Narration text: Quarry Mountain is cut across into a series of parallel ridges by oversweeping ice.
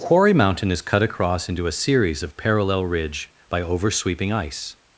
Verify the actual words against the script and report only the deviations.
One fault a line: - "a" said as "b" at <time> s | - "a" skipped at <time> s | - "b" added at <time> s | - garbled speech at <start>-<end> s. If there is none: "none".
- "ridges" said as "ridge" at 2.9 s